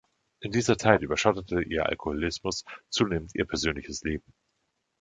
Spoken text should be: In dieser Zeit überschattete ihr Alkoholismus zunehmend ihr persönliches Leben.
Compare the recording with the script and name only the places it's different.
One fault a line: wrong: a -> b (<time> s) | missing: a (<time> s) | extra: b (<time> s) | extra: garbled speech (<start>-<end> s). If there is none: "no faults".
no faults